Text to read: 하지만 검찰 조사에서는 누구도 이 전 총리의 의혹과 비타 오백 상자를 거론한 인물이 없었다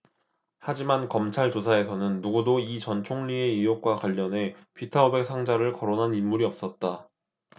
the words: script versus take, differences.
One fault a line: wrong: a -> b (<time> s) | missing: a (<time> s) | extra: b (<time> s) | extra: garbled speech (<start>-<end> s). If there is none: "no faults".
extra: 관련해 (4.0 s)